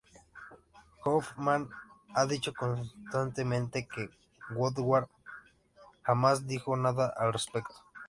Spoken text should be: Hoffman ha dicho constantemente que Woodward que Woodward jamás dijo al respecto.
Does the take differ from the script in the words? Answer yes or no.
yes